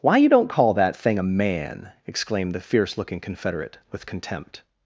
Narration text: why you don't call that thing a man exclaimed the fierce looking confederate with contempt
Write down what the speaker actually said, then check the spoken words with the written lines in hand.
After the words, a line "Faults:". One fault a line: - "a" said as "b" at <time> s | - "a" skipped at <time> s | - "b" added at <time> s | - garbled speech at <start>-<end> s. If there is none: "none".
why you don't call that thing a man exclaimed the fierce looking confederate with contempt
Faults:
none